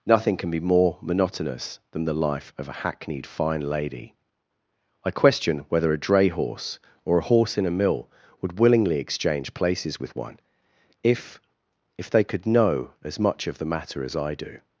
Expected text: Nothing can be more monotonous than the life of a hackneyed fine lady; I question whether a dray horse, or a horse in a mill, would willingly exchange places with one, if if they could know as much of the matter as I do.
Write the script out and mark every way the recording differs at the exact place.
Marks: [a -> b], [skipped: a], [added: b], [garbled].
Nothing can be more monotonous than the life of a hackneyed fine lady; I question whether a dray horse, or a horse in a mill, would willingly exchange places with one, if if they could know as much of the matter as I do.